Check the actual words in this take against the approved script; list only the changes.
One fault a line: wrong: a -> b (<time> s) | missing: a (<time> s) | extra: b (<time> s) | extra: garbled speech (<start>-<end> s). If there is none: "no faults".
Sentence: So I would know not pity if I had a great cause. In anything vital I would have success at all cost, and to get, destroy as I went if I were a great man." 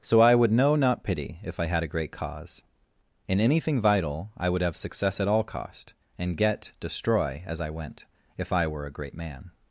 missing: to (6.3 s)